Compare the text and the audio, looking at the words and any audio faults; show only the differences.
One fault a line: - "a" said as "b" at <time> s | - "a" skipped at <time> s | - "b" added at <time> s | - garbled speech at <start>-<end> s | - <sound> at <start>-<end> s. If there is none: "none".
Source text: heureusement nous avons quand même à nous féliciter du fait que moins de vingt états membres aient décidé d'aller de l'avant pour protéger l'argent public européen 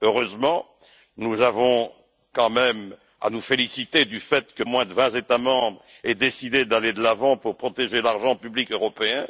none